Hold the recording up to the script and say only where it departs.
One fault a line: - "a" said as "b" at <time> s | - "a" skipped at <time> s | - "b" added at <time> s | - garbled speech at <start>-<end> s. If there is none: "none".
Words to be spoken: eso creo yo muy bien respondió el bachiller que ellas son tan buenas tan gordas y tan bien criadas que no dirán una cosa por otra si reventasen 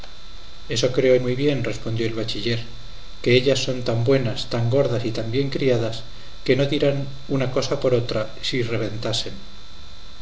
- "yo" skipped at 1.1 s